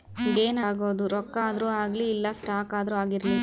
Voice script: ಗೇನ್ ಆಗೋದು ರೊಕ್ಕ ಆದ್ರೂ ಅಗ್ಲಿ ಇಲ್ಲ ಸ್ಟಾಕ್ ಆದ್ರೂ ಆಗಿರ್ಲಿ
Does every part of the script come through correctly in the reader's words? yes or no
yes